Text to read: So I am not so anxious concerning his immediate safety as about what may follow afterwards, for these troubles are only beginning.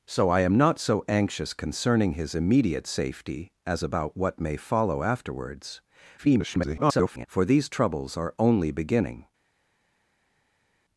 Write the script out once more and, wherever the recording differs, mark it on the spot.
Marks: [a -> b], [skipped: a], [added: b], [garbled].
So I am not so anxious concerning his immediate safety as about what may follow afterwards, [garbled] for these troubles are only beginning.